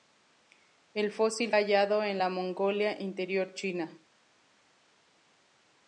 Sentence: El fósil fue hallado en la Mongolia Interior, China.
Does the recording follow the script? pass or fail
fail